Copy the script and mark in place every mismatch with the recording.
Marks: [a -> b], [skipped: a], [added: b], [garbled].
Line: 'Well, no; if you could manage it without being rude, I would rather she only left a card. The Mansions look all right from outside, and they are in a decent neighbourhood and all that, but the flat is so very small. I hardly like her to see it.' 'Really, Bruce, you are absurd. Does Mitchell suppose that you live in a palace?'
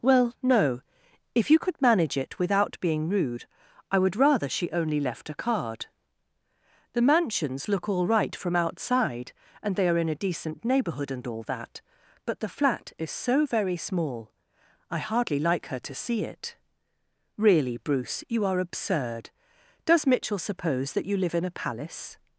'Well, no; if you could manage it without being rude, I would rather she only left a card. The Mansions look all right from outside, and they are in a decent neighbourhood and all that, but the flat is so very small. I hardly like her to see it.' 'Really, Bruce, you are absurd. Does Mitchell suppose that you live in a palace?'